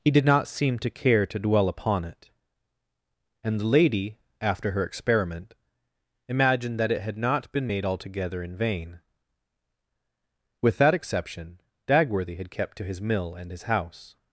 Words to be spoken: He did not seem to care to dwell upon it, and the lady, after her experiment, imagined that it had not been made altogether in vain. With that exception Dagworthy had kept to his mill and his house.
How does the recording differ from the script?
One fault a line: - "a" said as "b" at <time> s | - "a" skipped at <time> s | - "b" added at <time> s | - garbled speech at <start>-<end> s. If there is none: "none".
none